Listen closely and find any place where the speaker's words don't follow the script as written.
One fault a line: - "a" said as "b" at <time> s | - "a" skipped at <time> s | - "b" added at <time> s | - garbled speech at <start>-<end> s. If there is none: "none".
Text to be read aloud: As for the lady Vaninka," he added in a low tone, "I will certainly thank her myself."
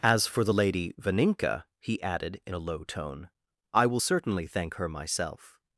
none